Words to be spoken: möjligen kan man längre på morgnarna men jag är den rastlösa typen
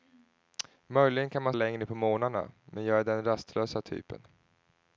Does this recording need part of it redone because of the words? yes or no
no